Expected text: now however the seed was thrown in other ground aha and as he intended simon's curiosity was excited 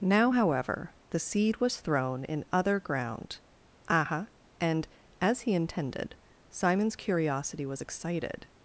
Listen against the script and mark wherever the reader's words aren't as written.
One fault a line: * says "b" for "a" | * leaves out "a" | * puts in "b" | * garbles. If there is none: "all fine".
all fine